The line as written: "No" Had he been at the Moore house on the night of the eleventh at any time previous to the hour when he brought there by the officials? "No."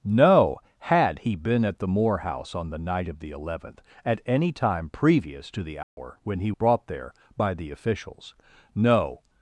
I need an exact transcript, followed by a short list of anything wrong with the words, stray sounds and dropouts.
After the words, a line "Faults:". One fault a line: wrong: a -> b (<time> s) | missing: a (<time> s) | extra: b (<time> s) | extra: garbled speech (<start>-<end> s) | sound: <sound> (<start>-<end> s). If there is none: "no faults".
"No" Had he been at the Moore house on the night of the eleventh at any time previous to the hour when he brought there by the officials? "No."
Faults:
sound: dropout (5.8-6.0 s)